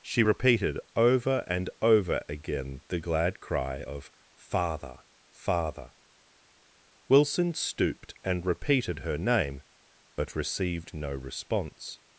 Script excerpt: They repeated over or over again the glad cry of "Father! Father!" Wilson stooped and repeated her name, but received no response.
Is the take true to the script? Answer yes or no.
no